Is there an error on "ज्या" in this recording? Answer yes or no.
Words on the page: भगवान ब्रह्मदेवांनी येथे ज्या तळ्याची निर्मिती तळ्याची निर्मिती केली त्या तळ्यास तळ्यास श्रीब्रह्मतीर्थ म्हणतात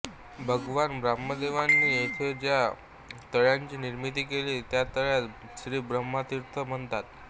no